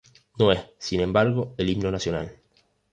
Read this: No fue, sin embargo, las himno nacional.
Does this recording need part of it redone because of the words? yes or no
yes